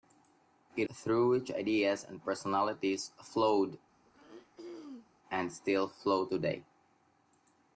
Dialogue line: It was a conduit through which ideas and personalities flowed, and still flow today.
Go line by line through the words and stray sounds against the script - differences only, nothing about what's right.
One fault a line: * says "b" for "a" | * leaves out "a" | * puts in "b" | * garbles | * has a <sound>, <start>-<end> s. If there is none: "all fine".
* leaves out "was a conduit"
* has a throat clearing, 4.0-5.2 s